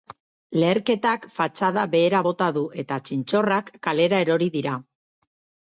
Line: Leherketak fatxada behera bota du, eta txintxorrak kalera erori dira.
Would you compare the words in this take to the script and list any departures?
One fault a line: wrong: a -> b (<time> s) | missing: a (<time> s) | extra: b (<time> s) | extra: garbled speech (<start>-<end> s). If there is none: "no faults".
no faults